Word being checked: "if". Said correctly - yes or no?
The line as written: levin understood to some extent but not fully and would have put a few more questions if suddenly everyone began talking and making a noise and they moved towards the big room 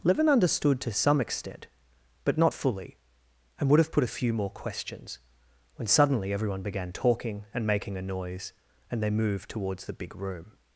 no